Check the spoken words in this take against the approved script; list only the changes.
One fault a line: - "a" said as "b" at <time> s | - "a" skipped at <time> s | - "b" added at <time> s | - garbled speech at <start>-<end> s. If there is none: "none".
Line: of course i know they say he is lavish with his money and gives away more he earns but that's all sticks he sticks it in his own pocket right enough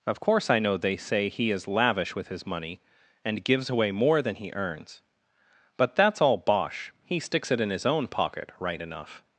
- "than" added at 4.2 s
- "sticks" said as "bosh" at 6.4 s